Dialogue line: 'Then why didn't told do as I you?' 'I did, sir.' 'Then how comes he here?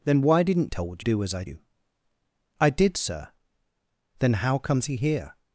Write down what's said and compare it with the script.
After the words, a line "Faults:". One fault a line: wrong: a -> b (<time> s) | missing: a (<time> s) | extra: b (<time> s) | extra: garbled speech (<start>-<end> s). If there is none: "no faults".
'Then why didn't told do as I you?' 'I did, sir.' 'Then how comes he here?
Faults:
no faults